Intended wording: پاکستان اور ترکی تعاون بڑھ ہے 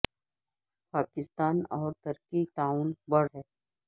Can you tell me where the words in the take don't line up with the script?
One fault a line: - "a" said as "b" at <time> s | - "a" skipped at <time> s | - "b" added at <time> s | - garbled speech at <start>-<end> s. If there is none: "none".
none